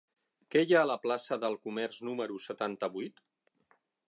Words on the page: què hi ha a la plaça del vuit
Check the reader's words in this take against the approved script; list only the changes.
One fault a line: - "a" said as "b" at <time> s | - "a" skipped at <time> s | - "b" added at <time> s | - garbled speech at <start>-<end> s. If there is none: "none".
- "comerç número setanta" added at 1.7 s